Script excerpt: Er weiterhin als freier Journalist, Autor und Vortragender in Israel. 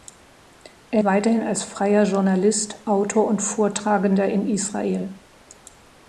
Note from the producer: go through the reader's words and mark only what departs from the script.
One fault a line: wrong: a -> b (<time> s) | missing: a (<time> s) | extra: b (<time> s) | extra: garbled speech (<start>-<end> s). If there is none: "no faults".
no faults